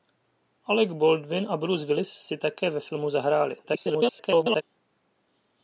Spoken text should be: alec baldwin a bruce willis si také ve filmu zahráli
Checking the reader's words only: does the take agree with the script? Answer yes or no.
no